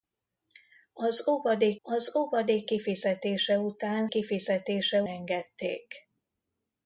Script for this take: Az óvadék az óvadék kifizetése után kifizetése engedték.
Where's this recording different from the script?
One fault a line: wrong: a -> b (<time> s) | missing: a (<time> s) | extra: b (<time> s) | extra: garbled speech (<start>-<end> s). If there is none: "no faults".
no faults